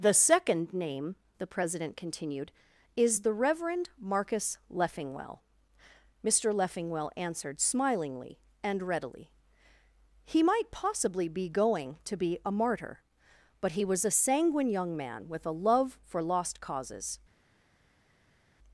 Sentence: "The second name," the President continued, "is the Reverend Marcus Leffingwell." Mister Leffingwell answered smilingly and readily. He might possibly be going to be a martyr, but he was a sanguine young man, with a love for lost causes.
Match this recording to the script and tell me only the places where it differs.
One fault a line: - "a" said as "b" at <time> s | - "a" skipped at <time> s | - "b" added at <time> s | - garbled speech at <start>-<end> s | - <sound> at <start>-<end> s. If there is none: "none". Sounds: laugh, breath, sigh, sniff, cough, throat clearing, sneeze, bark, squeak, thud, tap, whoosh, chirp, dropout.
none